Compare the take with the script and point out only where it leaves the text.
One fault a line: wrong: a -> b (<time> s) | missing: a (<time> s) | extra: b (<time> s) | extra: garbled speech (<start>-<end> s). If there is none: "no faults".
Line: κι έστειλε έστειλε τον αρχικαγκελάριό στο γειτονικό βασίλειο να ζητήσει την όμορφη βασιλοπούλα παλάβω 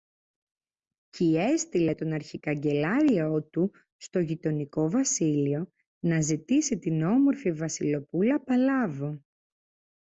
missing: έστειλε (1.9 s)
extra: του (3.4 s)